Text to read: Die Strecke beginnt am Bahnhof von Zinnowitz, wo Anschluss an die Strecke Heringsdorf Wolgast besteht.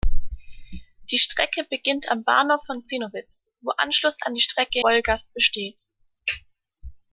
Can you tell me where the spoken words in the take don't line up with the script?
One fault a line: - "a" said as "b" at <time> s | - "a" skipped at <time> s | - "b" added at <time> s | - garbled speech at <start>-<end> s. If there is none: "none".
- "Heringsdorf" skipped at 4.8 s